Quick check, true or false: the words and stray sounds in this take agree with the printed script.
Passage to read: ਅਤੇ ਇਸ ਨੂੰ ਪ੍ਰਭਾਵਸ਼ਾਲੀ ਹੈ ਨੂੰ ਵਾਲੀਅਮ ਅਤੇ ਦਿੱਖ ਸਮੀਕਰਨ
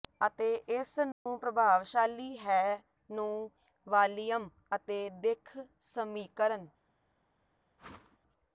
false